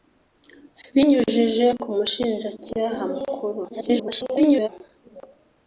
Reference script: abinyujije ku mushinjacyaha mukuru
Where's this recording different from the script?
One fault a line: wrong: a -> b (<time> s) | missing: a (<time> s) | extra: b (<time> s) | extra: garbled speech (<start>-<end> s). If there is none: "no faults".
extra: garbled speech (3.7-4.7 s)